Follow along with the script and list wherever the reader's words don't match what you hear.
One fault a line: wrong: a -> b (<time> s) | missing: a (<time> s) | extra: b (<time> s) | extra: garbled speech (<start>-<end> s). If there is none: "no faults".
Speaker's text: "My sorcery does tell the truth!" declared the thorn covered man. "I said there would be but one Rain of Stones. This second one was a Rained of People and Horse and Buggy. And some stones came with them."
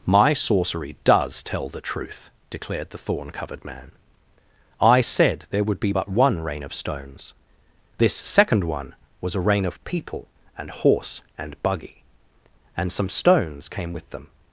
wrong: Rained -> Rain (9.4 s)